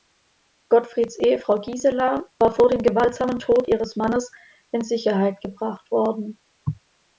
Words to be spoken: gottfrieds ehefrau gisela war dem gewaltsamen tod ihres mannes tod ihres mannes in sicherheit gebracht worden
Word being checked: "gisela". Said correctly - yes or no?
yes